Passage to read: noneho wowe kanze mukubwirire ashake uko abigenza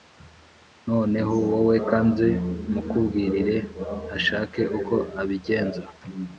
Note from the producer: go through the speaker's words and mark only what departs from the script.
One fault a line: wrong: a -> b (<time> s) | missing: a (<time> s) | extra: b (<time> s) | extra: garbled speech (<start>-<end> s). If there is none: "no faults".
no faults